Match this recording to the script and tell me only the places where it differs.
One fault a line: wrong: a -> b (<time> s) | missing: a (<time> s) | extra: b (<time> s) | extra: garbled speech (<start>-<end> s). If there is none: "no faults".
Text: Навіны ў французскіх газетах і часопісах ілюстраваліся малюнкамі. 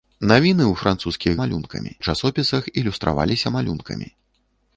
wrong: газетах -> малюнкамі (1.4 s)